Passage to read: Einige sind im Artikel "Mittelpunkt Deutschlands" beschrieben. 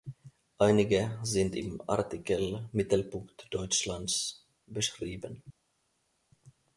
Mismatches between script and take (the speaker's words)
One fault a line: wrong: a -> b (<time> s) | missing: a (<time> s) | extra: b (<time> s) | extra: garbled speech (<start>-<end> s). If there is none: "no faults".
no faults